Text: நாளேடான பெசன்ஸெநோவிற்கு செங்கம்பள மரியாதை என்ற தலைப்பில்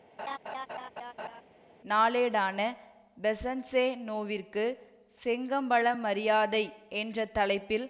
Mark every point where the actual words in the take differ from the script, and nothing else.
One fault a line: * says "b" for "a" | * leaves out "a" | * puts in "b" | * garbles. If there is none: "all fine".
all fine